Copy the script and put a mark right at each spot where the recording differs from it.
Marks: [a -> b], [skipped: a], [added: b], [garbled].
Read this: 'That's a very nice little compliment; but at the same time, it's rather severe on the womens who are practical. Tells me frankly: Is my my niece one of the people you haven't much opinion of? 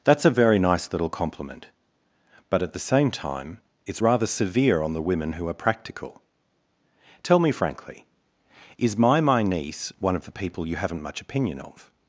'That's a very nice little compliment; but at the same time, it's rather severe on the [womens -> women] who are practical. [Tells -> Tell] me frankly: Is my my niece one of the people you haven't much opinion of?